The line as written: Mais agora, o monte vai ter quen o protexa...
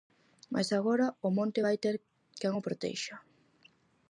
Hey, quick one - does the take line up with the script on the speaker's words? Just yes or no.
yes